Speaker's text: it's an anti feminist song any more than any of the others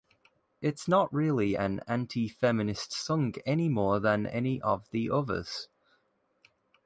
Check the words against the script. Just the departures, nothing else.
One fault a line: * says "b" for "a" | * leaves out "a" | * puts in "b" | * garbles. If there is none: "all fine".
* puts in "not really"